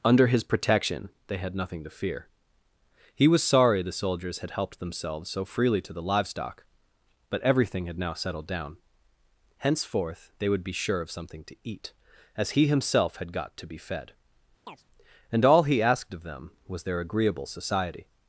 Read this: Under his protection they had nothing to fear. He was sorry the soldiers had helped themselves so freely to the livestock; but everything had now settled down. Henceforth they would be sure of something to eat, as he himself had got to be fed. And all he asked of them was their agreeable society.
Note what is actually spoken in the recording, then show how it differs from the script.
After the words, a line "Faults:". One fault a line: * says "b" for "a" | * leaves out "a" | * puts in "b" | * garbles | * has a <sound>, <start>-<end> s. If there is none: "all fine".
Under his protection they had nothing to fear. He was sorry the soldiers had helped themselves so freely to the livestock; but everything had now settled down. Henceforth they would be sure of something to eat, as he himself had got to be fed. And all he asked of them was their agreeable society.
Faults:
* has a chirp, 14.7-14.8 s